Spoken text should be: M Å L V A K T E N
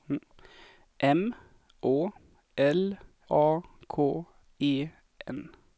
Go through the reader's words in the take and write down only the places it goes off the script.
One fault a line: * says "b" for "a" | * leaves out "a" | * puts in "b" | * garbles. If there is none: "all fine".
* leaves out "V"
* leaves out "T"